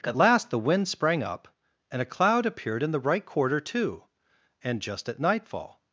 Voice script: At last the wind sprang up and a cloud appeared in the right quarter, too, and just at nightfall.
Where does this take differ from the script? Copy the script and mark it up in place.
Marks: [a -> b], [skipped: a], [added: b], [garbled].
At last the wind sprang up and a cloud appeared in the right quarter, too, and just at nightfall.